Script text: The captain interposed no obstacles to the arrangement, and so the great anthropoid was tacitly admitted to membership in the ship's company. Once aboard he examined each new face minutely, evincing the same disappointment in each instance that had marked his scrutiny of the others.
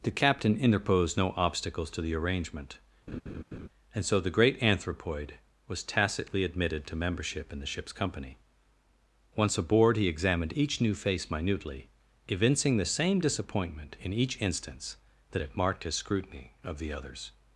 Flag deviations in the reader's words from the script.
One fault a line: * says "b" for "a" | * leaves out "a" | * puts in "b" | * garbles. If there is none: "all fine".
all fine